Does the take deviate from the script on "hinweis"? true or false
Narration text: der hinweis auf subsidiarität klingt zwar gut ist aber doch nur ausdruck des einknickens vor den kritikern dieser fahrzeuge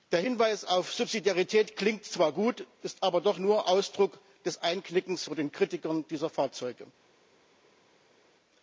false